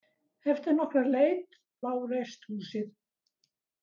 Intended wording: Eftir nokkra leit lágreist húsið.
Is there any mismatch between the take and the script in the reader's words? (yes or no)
no